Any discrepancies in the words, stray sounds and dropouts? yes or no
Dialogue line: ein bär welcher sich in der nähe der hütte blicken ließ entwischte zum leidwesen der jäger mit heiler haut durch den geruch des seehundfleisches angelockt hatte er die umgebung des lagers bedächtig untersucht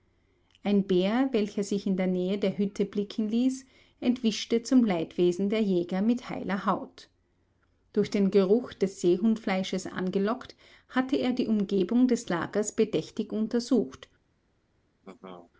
yes